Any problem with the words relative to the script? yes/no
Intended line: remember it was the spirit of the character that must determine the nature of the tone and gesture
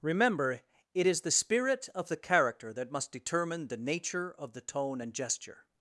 yes